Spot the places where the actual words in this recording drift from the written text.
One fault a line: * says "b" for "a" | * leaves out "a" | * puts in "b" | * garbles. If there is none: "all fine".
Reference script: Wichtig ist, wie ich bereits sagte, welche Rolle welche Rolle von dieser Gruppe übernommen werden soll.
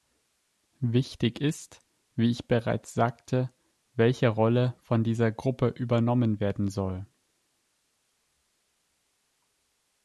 * leaves out "welche Rolle"